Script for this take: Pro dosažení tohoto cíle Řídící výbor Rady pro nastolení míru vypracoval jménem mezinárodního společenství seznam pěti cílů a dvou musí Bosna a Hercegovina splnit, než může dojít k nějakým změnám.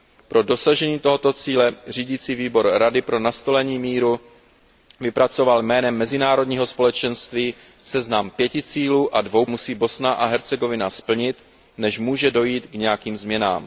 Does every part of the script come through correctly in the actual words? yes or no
yes